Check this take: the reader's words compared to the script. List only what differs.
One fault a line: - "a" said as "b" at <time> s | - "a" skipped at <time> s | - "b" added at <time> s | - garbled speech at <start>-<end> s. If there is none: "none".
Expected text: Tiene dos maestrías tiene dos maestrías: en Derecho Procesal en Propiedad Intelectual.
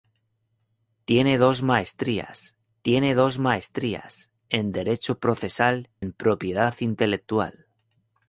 none